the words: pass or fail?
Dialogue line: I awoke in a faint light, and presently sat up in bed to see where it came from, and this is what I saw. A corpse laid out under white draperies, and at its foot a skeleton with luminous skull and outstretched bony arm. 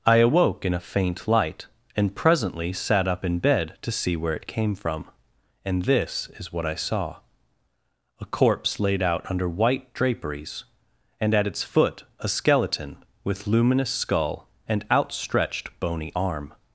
pass